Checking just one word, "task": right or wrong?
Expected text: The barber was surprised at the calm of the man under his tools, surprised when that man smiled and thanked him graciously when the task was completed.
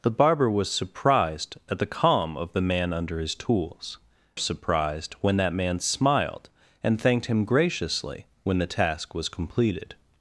right